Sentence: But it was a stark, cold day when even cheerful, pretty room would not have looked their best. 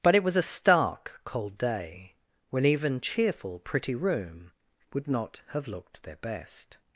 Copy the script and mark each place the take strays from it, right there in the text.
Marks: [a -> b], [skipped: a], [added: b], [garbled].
But it was a stark, cold day when even cheerful, pretty room would not have looked their best.